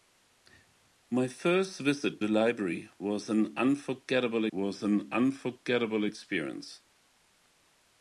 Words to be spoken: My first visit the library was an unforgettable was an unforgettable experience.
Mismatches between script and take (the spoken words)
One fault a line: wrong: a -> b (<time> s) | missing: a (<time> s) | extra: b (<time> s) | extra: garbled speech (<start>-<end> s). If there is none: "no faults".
no faults